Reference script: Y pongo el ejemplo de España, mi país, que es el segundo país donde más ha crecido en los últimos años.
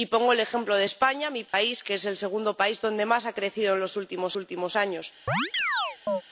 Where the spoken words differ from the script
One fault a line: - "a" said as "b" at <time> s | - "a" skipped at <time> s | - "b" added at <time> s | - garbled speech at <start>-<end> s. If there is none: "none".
- "últimos" added at 4.4 s